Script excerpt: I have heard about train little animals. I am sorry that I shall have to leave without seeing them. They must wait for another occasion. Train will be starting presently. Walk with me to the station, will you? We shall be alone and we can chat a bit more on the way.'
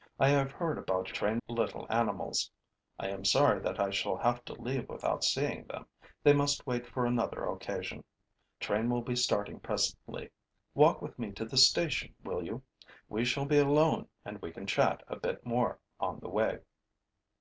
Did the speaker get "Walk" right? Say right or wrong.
right